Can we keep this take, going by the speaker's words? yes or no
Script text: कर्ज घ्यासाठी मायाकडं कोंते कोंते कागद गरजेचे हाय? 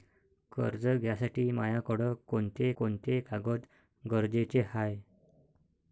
yes